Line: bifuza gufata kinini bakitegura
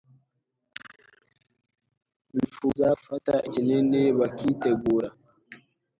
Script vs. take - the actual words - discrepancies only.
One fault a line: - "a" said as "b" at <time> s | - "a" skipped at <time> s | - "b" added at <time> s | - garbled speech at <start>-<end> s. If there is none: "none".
none